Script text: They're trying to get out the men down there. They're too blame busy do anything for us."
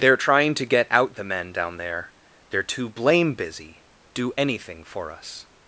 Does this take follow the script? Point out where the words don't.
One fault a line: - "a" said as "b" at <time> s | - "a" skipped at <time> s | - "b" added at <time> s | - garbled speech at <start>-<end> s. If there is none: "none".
none